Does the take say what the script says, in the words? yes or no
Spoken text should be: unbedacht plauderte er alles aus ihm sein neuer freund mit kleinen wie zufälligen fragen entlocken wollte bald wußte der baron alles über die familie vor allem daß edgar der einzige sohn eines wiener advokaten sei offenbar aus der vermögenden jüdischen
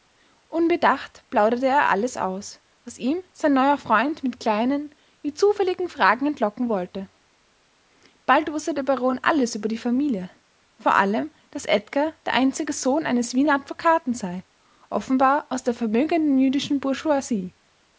no